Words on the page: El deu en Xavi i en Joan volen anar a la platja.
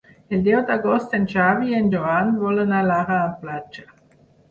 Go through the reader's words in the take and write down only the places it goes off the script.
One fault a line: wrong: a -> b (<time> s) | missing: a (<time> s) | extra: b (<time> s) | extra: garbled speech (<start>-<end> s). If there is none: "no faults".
extra: d'agost (0.7 s)